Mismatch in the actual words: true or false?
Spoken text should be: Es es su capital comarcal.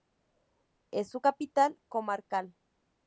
true